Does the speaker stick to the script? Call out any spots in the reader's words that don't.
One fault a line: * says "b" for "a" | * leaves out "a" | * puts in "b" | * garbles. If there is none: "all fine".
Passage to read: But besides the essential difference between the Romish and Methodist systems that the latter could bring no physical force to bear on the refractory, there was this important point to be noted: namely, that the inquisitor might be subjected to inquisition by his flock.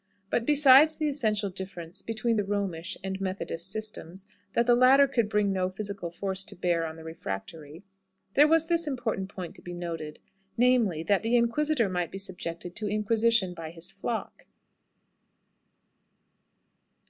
all fine